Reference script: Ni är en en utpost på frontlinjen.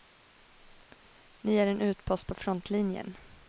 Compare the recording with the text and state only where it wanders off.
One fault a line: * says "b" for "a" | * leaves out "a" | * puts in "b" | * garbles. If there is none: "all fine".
* leaves out "en"